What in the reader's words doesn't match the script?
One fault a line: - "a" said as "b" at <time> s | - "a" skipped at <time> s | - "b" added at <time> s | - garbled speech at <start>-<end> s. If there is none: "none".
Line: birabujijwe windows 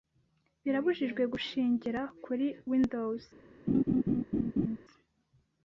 - "gushingira kuri" added at 1.3 s